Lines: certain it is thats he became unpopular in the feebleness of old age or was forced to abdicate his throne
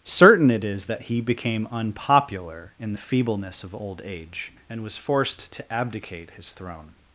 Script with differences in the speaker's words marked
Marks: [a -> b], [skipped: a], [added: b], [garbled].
certain it is [thats -> that] he became unpopular in the feebleness of old age [or -> and] was forced to abdicate his throne